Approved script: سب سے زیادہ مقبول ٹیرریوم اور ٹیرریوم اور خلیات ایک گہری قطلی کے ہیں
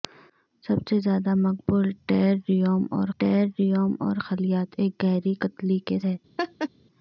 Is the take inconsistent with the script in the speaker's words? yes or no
no